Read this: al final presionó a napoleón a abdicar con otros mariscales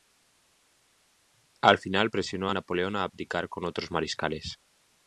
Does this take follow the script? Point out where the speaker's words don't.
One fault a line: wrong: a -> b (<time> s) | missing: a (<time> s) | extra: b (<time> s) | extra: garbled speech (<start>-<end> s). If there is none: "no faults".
no faults